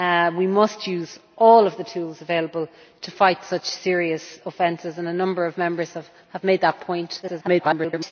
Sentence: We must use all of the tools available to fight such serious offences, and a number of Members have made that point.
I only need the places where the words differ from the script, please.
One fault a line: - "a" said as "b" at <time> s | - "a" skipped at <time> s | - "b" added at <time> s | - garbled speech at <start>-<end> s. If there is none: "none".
- garbled speech at 7.2-8.1 s